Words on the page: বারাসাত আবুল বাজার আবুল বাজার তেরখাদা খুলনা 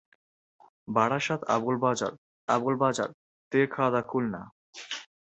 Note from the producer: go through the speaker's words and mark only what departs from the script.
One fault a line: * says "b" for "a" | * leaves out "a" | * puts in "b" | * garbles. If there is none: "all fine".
all fine